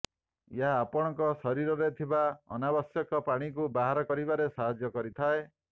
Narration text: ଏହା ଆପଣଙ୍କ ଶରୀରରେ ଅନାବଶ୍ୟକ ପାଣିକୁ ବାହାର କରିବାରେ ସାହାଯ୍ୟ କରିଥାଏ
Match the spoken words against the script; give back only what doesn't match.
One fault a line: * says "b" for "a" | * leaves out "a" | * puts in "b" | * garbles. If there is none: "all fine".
* puts in "ଥିବା"